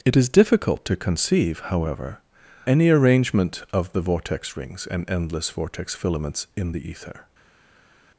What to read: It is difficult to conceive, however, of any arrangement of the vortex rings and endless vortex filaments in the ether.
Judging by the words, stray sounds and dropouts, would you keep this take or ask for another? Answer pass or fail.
fail